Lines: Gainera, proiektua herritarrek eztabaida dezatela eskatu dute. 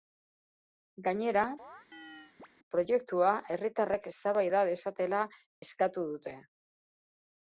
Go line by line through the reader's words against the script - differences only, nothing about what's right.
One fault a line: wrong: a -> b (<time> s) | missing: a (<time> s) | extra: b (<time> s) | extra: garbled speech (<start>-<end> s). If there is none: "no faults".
no faults